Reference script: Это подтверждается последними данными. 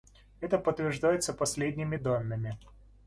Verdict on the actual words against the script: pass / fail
pass